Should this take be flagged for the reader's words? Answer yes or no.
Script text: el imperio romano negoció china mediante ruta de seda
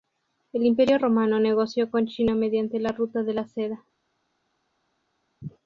yes